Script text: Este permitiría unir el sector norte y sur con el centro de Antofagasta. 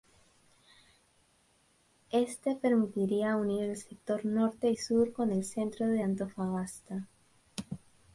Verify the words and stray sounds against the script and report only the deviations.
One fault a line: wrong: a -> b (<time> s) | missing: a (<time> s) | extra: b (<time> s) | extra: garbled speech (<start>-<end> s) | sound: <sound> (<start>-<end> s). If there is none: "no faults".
no faults